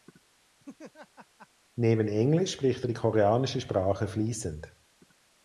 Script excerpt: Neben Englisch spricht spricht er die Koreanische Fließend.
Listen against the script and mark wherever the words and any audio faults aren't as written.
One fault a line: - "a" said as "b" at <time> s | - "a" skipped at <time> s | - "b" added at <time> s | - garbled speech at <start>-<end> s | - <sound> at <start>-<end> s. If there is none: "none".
- laugh at 0.6-1.5 s
- "spricht" skipped at 2.8 s
- "Sprache" added at 3.6 s